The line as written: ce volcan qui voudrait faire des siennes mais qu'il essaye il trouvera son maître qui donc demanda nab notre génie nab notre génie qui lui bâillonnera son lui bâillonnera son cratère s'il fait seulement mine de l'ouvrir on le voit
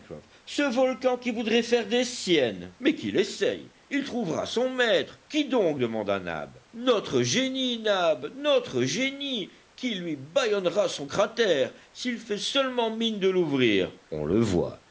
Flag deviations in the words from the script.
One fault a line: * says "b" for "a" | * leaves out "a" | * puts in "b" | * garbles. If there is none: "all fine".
* leaves out "lui bâillonnera son"